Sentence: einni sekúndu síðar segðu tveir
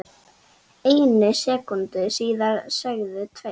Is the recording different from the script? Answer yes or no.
no